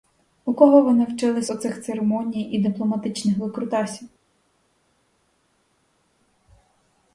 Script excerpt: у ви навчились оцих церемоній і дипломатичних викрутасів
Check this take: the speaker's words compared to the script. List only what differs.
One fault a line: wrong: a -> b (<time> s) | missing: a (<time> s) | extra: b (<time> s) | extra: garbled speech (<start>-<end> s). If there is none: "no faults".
extra: кого (0.5 s)